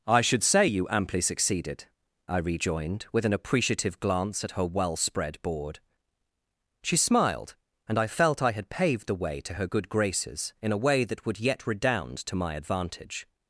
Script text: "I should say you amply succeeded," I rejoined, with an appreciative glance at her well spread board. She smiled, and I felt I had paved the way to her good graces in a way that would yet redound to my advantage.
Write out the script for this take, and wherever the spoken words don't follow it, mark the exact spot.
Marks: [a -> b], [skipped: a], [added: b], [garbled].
"I should say you amply succeeded," I rejoined, with an appreciative glance at her well spread board. She smiled, and I felt I had paved the way to her good graces in a way that would yet redound to my advantage.